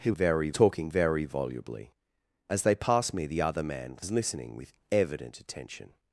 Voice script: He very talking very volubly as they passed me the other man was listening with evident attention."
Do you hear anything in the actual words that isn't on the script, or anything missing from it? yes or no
no